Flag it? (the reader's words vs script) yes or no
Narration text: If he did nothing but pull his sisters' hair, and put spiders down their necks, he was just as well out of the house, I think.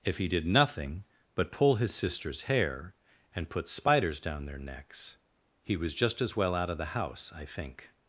no